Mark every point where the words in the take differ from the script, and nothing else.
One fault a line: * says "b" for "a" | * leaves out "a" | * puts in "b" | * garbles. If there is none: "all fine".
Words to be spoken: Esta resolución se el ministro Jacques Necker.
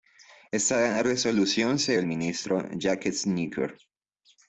all fine